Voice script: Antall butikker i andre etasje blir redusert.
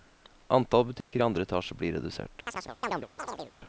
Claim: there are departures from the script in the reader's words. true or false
false